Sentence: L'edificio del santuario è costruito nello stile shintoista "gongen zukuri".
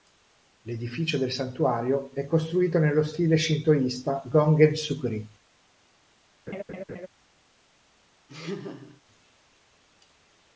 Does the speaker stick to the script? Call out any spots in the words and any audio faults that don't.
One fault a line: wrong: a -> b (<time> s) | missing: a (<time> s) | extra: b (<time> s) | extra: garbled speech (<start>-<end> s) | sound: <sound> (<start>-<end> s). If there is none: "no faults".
sound: laugh (6.5-7.1 s)
sound: laugh (8.3-9.0 s)